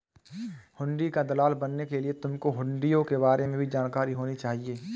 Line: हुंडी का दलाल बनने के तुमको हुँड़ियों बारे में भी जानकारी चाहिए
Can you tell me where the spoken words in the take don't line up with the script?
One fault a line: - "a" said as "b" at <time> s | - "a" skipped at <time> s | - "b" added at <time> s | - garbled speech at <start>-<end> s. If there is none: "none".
- "लिए" added at 2.0 s
- "के" added at 3.0 s
- "होनी" added at 4.1 s